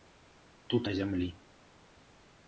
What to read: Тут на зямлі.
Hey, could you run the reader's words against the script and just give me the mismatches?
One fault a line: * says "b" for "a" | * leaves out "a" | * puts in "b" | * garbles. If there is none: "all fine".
all fine